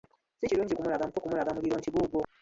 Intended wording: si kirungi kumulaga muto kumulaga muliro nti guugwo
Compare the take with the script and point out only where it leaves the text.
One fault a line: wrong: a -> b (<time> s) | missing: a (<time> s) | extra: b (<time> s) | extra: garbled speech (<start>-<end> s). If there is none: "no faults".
no faults